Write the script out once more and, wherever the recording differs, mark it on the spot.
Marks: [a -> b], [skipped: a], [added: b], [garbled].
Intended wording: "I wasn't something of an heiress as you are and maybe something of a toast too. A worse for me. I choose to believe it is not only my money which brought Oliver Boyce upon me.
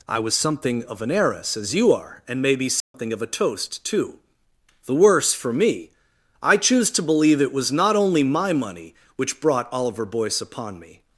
"I [wasn't -> was] something of an heiress as you are and maybe something of a toast too. [A -> The] worse for me. I choose to believe it [is -> was] not only my money which brought Oliver Boyce upon me.